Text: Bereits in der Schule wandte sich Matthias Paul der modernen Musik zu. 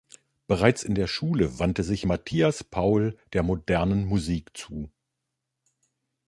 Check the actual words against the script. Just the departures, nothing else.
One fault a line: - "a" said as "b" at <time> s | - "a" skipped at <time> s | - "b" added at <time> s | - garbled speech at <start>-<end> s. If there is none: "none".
none